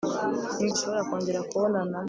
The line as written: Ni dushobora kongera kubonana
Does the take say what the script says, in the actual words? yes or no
yes